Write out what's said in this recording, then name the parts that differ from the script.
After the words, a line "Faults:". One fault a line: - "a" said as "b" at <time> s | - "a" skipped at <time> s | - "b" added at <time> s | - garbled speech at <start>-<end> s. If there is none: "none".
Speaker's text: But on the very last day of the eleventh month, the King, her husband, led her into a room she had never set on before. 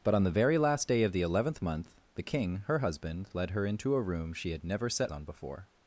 But on the very last day of the eleventh month, the King, her husband, led her into a room she had never set on before.
Faults:
none